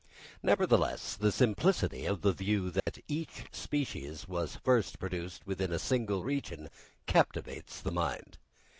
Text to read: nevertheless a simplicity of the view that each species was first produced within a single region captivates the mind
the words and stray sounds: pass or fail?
fail